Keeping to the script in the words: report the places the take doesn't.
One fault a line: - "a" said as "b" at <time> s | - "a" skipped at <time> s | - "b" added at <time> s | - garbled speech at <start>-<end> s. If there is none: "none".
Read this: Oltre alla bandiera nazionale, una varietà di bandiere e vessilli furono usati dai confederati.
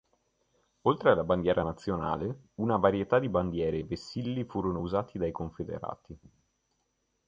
none